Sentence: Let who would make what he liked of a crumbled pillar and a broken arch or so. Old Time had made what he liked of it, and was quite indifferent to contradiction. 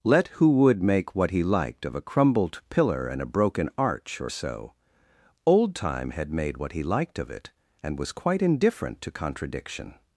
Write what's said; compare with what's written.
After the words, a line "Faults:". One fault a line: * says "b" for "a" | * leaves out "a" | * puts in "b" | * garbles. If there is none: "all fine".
Let who would make what he liked of a crumbled pillar and a broken arch or so. Old Time had made what he liked of it, and was quite indifferent to contradiction.
Faults:
all fine